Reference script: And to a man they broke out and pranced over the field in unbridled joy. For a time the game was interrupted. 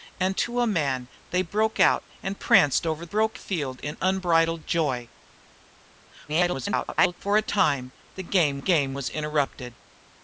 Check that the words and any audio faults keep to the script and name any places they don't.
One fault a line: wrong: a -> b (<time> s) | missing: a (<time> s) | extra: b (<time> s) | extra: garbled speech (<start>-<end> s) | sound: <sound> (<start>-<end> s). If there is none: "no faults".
wrong: the -> broke (3.0 s)
extra: garbled speech (6.3-7.1 s)
extra: game (8.6 s)